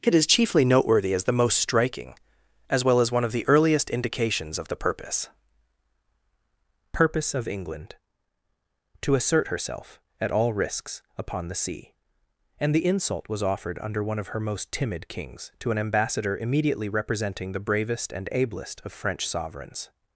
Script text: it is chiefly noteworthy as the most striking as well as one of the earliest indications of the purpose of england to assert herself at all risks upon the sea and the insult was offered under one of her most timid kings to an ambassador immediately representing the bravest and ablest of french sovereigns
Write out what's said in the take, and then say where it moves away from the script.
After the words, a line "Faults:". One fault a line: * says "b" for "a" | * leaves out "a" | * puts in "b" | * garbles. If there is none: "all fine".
it is chiefly noteworthy as the most striking as well as one of the earliest indications of the purpose purpose of england to assert herself at all risks upon the sea and the insult was offered under one of her most timid kings to an ambassador immediately representing the bravest and ablest of french sovereigns
Faults:
* puts in "purpose"